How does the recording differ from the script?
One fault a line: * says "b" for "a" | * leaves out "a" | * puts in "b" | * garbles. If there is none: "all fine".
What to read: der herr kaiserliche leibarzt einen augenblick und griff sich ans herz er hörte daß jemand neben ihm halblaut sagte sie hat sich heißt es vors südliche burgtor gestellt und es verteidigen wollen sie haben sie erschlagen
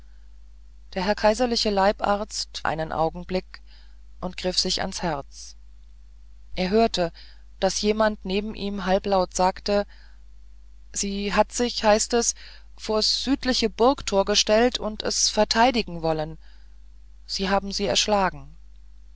all fine